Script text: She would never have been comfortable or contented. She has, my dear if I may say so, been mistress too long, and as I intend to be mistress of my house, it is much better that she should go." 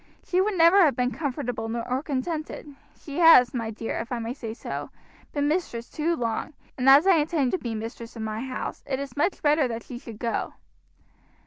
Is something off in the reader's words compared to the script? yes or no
no